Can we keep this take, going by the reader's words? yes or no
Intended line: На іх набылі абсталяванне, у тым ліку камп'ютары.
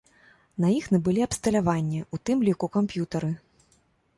yes